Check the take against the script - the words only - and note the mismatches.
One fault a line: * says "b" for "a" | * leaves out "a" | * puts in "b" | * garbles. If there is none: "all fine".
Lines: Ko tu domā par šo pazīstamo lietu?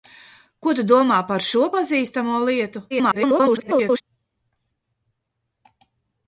* garbles